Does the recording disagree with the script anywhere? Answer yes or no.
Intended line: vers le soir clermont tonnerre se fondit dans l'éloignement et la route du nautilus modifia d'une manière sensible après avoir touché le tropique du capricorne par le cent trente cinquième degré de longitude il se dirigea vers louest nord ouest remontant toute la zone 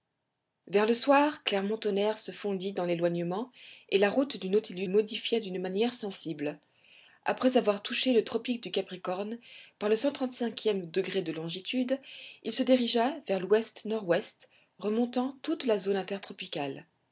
no